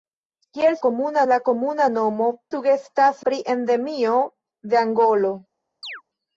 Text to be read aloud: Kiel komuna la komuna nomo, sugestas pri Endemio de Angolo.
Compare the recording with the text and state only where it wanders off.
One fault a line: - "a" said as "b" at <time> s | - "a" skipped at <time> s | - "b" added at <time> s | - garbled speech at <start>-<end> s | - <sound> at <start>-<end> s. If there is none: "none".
- chirp at 5.8-6.0 s